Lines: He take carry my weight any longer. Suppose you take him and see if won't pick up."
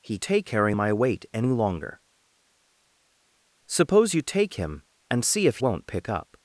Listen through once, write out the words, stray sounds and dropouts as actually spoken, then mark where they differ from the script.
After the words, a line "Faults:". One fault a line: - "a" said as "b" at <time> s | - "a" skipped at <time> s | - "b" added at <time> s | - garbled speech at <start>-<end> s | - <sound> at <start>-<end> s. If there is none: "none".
He take carry my weight any longer. Suppose you take him and see if won't pick up."
Faults:
none